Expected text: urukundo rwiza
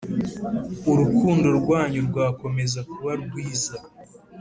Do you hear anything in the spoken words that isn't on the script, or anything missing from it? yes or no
yes